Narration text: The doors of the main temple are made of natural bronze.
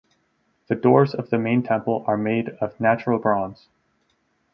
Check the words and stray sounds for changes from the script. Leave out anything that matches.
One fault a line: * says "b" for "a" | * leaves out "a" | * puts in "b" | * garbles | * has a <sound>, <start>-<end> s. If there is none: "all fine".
all fine